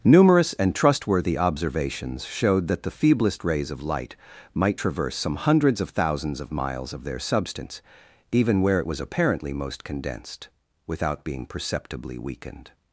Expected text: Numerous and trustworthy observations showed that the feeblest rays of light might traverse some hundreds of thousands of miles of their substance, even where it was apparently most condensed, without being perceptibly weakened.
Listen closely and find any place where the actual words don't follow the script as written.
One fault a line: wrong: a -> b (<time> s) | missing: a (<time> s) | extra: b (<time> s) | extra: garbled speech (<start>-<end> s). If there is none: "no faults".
no faults